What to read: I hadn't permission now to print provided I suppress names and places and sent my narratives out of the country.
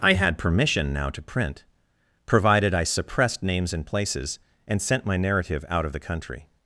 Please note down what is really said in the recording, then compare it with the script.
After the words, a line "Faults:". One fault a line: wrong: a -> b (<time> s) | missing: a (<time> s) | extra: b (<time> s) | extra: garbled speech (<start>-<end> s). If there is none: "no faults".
I had permission now to print provided I suppressed names and places and sent my narrative out of the country.
Faults:
wrong: hadn't -> had (0.1 s)
wrong: suppress -> suppressed (2.9 s)
wrong: narratives -> narrative (5.2 s)